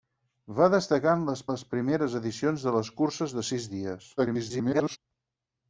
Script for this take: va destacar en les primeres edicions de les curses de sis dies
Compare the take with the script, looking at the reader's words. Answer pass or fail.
fail